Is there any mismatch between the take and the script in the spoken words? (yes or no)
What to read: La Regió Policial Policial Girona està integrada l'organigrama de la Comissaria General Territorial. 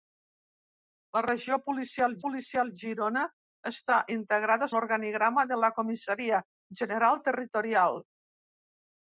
no